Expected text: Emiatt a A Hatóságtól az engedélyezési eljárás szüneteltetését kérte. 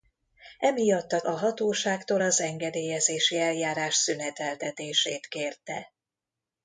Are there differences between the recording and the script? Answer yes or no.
no